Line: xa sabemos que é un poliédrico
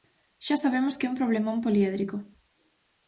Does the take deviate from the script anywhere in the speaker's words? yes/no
yes